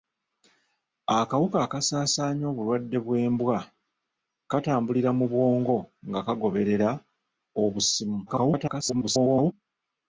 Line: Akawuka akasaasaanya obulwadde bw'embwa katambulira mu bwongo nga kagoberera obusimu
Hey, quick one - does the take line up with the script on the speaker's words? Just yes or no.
no